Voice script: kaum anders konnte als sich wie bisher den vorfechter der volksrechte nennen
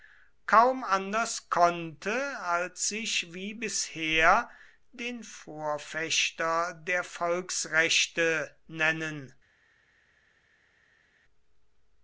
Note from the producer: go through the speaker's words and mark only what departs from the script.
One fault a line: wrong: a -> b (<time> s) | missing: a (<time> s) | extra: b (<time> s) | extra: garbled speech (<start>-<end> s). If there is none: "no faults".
no faults